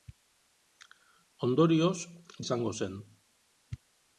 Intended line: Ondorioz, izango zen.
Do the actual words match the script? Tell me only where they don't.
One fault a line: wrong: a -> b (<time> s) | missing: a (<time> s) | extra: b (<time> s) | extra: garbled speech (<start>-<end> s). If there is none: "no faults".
no faults